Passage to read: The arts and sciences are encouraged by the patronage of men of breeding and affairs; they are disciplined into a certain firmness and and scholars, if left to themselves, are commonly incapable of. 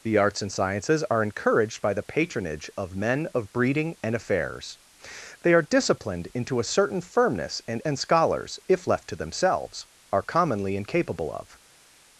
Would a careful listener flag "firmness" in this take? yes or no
no